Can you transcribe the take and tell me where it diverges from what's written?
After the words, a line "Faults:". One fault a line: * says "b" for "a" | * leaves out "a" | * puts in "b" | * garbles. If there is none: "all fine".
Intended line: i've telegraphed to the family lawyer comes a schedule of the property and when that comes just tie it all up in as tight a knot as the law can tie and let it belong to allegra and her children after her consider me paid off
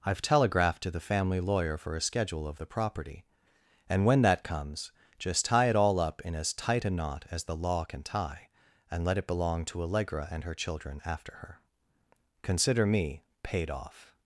i've telegraphed to the family lawyer for a schedule of the property and when that comes just tie it all up in as tight a knot as the law can tie and let it belong to allegra and her children after her consider me paid off
Faults:
* says "for" for "comes"